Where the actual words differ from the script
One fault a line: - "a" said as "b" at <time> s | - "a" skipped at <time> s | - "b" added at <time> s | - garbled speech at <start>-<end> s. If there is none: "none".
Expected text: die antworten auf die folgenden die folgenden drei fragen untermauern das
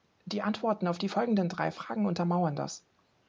- "die folgenden" skipped at 1.5 s